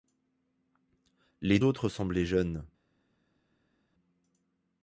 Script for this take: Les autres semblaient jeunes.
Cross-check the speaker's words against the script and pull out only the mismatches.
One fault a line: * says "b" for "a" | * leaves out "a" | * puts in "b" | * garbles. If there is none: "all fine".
all fine